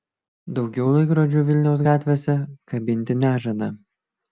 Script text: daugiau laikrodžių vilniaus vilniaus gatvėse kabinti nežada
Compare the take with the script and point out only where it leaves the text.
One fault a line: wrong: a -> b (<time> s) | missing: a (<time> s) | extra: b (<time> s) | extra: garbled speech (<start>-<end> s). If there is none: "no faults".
missing: vilniaus (1.9 s)